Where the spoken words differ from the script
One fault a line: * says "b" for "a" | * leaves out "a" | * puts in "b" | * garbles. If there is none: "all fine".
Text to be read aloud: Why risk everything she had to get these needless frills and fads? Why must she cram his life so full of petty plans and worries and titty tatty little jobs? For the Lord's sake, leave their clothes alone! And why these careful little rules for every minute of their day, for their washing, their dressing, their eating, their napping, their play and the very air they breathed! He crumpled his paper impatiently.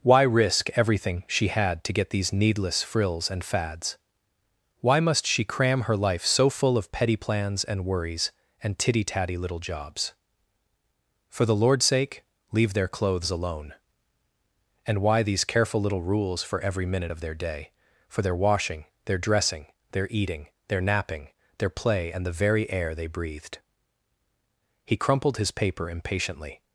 * says "her" for "his"